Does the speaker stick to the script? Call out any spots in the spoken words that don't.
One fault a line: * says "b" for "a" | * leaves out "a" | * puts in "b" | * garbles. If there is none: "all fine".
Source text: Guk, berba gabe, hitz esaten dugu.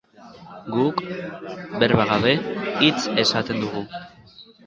all fine